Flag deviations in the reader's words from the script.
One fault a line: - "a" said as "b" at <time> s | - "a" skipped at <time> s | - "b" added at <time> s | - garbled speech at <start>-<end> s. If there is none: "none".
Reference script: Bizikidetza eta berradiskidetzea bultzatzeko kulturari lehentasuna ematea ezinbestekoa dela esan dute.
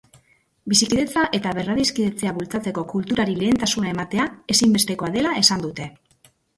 none